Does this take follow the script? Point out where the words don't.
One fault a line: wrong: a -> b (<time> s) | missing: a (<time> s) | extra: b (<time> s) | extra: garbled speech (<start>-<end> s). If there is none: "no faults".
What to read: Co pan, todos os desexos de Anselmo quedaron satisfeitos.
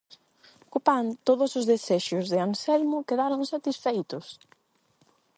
no faults